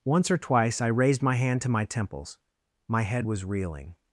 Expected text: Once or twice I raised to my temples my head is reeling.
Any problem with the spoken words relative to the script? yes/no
yes